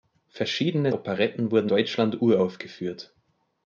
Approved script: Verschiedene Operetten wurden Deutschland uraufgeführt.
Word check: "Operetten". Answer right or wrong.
right